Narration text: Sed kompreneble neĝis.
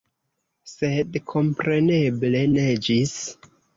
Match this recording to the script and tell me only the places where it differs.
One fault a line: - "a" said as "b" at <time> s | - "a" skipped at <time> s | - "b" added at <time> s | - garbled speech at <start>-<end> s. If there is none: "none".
none